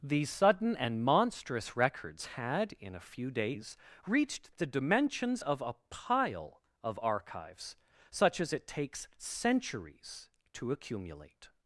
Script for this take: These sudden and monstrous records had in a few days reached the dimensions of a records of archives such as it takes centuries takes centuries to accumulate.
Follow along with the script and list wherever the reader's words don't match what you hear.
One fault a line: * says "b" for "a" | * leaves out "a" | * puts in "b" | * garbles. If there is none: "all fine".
* says "pile" for "records"
* leaves out "takes centuries"